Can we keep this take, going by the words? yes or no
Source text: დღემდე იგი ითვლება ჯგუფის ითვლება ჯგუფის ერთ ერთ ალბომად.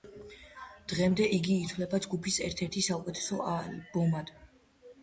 no